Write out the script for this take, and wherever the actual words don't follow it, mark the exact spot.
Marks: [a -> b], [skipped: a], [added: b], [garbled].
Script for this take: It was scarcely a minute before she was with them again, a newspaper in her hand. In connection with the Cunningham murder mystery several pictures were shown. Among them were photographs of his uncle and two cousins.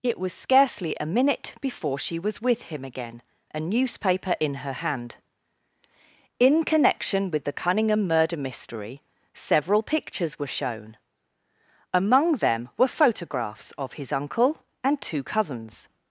It was scarcely a minute before she was with [them -> him] again, a newspaper in her hand. In connection with the Cunningham murder mystery several pictures were shown. Among them were photographs of his uncle and two cousins.